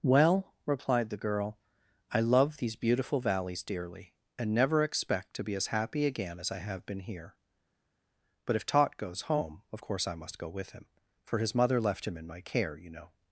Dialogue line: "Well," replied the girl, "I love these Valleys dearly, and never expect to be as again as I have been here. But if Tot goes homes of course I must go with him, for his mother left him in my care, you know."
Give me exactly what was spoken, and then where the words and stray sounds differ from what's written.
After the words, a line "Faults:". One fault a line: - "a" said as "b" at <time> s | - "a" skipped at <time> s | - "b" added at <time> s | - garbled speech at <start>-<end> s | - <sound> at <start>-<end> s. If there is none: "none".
"Well," replied the girl, "I love these beautiful Valleys dearly, and never expect to be as happy again as I have been here. But if Tot goes home of course I must go with him, for his mother left him in my care, you know."
Faults:
- "beautiful" added at 2.8 s
- "happy" added at 5.7 s
- "homes" said as "home" at 9.2 s